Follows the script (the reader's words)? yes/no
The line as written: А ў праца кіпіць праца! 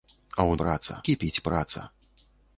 yes